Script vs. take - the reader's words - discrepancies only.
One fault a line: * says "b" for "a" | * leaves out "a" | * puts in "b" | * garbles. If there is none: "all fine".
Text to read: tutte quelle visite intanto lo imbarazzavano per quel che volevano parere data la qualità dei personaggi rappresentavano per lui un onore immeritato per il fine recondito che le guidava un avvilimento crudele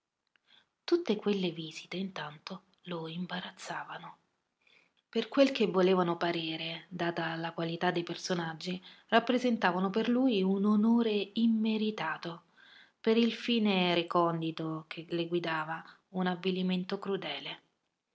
all fine